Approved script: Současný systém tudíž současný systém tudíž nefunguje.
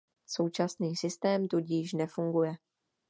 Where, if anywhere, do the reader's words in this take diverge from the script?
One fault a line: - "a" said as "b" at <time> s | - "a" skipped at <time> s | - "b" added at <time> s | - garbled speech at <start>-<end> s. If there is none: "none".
- "současný systém tudíž" skipped at 1.9 s